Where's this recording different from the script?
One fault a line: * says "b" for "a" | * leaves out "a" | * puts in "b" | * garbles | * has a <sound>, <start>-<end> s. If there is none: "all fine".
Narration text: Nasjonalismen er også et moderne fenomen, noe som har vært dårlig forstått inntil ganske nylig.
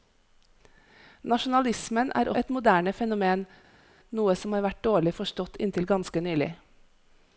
* leaves out "også"